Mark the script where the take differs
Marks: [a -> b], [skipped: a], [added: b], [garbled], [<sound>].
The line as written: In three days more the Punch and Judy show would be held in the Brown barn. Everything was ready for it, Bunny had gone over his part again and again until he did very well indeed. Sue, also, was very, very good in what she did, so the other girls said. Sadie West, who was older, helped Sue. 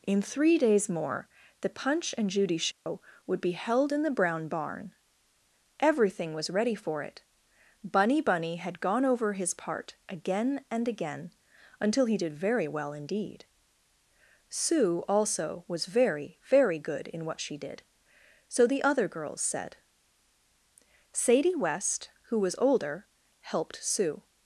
In three days more the Punch and Judy show [dropout] would be held in the Brown barn. Everything was ready for it, Bunny [added: Bunny] had gone over his part again and again until he did very well indeed. Sue, also, was very, very good in what she did, so the other girls said. Sadie West, who was older, helped Sue.